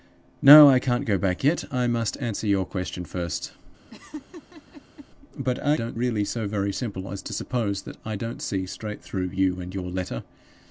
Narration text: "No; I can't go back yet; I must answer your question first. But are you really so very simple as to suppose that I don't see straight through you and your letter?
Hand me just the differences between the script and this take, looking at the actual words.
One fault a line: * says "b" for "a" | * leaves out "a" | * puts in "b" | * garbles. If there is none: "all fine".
* says "don't" for "you"